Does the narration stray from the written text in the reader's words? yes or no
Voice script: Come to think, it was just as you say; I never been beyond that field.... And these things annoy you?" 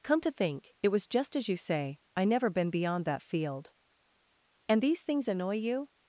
no